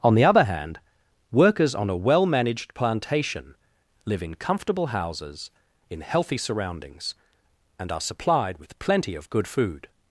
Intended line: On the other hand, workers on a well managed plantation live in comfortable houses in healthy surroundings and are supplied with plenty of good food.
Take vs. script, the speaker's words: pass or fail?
pass